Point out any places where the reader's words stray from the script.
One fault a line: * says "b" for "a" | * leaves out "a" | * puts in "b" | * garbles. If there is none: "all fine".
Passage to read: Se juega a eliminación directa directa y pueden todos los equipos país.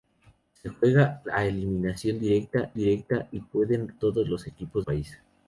all fine